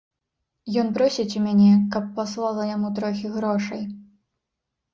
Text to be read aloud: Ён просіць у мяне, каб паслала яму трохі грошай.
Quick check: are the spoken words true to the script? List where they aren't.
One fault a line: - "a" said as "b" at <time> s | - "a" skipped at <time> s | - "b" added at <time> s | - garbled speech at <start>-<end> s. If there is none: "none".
none